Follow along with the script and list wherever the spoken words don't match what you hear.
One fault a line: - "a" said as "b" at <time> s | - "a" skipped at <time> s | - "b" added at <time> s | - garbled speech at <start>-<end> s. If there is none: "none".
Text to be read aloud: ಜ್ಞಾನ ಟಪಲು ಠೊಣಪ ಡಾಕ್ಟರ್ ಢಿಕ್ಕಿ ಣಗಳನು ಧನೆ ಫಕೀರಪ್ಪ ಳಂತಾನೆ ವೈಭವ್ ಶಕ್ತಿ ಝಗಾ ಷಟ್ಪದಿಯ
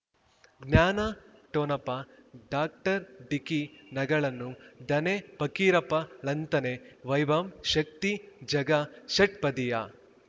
- "ಟಪಲು" skipped at 1.0 s